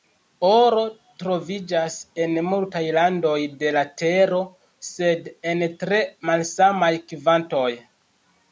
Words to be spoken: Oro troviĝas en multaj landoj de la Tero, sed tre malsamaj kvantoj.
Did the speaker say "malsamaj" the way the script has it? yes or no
yes